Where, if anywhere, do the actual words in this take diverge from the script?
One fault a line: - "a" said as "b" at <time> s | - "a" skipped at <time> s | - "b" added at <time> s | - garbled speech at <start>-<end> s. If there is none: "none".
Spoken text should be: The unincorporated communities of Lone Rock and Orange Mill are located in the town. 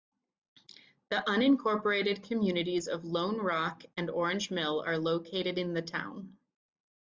none